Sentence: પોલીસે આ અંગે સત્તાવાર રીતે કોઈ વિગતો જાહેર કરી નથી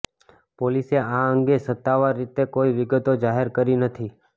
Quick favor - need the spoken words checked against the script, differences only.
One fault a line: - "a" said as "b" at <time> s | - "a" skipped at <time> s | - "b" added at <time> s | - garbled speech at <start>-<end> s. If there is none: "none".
none